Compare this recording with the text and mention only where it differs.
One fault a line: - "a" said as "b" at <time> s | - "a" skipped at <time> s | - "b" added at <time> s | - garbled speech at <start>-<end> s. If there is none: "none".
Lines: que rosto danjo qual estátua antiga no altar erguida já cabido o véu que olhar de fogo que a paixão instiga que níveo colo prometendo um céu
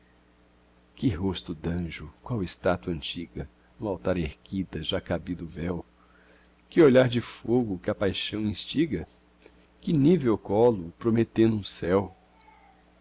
none